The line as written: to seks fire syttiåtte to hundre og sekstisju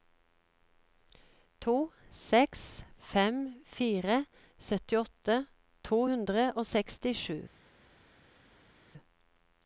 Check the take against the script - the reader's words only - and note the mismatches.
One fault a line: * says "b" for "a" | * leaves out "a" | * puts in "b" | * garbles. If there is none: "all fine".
* puts in "fem"